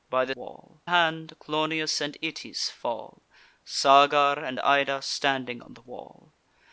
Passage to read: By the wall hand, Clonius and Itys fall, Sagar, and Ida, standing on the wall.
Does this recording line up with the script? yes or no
yes